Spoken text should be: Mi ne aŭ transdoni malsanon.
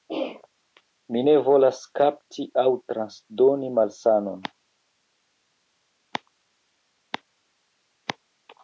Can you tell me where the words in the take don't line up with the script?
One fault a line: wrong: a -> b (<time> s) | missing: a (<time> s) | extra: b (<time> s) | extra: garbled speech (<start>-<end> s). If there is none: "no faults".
extra: volas kapti (1.5 s)